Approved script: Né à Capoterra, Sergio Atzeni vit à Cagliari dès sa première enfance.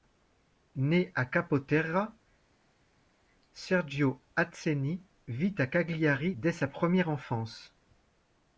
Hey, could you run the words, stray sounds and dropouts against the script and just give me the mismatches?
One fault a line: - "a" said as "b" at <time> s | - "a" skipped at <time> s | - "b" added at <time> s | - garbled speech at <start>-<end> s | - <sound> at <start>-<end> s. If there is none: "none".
none